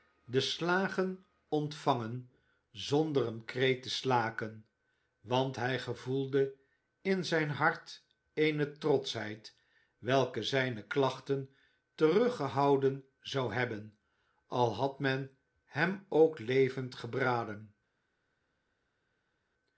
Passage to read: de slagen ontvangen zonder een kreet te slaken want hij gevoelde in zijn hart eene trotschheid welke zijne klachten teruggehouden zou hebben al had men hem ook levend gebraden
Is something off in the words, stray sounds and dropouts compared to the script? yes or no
no